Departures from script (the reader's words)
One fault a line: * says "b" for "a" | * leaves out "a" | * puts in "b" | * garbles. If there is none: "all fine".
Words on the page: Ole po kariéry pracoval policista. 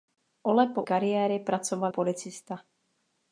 all fine